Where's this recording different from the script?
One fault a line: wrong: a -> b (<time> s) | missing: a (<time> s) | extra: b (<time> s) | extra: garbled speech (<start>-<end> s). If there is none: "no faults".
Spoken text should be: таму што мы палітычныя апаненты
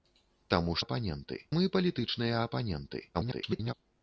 wrong: што -> апаненты (0.8 s)
extra: garbled speech (3.1-3.7 s)